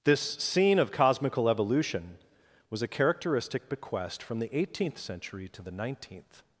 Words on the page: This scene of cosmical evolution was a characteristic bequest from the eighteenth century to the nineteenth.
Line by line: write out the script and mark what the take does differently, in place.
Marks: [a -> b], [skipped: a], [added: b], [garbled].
This scene of cosmical evolution was a characteristic bequest from the eighteenth century to the nineteenth.